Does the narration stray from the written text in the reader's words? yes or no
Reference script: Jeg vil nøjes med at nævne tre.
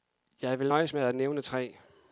no